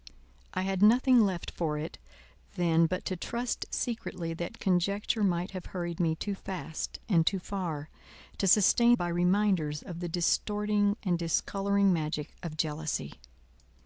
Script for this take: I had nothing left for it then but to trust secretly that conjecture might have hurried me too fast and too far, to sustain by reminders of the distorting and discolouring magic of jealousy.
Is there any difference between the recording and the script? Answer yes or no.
no